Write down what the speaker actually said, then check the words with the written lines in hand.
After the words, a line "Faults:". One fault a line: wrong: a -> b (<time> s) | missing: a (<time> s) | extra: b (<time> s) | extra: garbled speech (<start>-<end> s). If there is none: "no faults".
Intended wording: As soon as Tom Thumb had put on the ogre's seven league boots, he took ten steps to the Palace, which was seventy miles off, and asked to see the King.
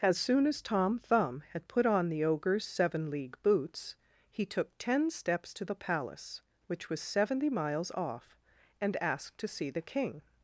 As soon as Tom Thumb had put on the ogre's seven league boots, he took ten steps to the Palace, which was seventy miles off, and asked to see the King.
Faults:
no faults